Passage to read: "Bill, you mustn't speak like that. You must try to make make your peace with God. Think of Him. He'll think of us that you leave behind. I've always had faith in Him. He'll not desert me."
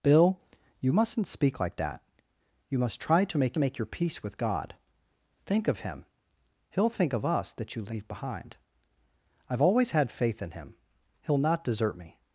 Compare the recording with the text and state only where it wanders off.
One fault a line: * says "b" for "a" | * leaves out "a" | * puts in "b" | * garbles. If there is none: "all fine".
all fine